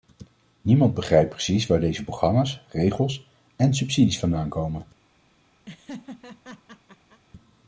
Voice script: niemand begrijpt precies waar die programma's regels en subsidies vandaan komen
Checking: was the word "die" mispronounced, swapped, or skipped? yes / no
yes